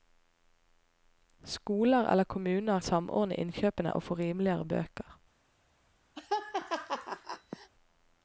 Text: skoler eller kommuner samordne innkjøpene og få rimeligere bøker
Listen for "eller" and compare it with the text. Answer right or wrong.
right